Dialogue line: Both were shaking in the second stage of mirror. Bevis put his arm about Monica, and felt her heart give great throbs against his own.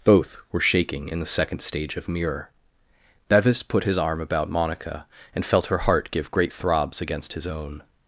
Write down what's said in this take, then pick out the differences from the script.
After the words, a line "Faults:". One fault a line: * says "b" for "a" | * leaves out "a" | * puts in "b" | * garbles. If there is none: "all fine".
Both were shaking in the second stage of mirror. Bevis put his arm about Monica, and felt her heart give great throbs against his own.
Faults:
all fine